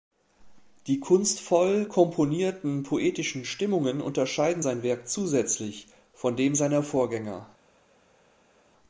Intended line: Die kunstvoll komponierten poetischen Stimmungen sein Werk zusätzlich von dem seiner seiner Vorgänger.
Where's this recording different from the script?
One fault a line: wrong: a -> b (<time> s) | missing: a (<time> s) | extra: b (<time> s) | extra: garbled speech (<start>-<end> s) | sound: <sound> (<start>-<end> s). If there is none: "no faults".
extra: unterscheiden (4.0 s)
missing: seiner (6.8 s)